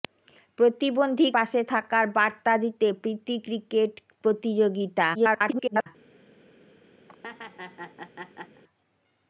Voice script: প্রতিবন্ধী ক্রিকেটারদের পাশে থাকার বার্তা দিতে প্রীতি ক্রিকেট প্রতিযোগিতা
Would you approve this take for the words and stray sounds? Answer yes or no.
no